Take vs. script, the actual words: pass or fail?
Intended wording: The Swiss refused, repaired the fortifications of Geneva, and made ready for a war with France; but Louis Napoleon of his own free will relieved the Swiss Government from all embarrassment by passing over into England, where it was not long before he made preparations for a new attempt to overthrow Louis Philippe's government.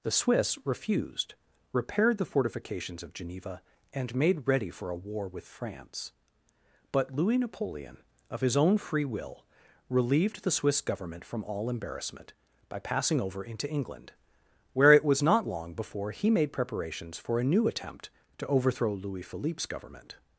pass